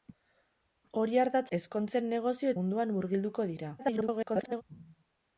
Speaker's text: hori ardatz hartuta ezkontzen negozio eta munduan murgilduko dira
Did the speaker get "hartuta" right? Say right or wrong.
wrong